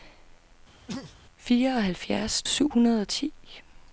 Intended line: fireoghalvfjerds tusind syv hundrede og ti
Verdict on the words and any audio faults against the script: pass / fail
fail